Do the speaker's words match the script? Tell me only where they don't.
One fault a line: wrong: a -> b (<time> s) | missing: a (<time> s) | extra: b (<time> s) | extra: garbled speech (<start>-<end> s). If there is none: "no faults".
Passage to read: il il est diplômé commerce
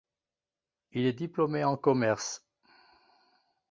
missing: il (1.1 s)
extra: en (1.6 s)